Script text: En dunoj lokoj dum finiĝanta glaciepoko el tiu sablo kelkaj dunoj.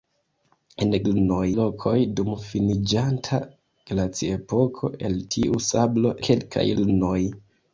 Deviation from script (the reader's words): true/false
false